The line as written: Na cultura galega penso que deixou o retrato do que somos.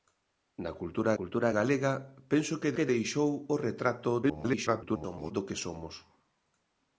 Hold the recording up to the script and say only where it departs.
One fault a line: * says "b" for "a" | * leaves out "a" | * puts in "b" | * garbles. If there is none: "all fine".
* puts in "cultura"
* puts in "que"
* garbles